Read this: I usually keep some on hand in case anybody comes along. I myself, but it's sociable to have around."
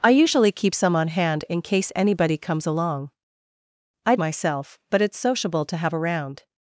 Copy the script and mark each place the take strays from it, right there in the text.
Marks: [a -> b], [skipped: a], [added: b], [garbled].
I usually keep some on hand in case anybody comes along. I myself, but it's sociable to have around."